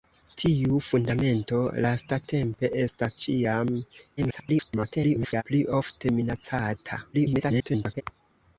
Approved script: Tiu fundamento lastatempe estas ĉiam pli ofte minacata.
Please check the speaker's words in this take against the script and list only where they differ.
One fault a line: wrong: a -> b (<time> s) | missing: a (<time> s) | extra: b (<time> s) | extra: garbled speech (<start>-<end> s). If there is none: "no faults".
extra: garbled speech (4.2-5.4 s)
extra: garbled speech (7.1-8.0 s)